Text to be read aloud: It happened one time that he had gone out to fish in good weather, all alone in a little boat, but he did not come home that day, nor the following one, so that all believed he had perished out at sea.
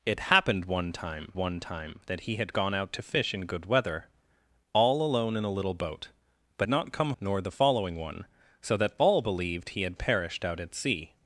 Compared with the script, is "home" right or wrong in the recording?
wrong